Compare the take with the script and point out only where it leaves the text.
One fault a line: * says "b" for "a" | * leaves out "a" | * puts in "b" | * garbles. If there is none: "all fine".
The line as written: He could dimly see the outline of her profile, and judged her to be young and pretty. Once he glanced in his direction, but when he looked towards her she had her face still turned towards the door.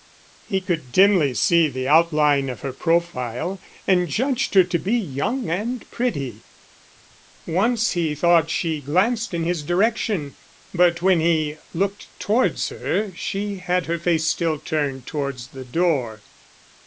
* puts in "thought she"